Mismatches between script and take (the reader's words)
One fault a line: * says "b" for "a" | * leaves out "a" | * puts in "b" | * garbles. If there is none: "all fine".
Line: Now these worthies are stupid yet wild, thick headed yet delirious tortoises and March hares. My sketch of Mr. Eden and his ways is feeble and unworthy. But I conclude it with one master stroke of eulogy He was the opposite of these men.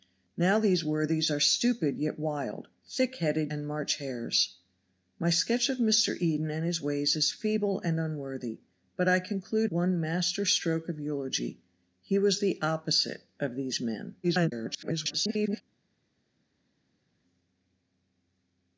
* leaves out "yet delirious tortoises"
* leaves out "it with"
* garbles